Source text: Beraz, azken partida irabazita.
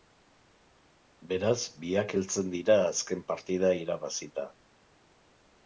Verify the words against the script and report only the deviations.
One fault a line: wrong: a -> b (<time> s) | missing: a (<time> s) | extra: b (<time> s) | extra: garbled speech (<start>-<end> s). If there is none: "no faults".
extra: biak heltzen dira (1.8 s)